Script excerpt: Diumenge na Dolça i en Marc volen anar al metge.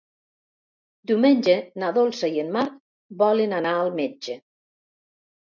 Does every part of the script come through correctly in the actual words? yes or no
yes